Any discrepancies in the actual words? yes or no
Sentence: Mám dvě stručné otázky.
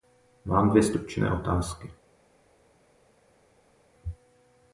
no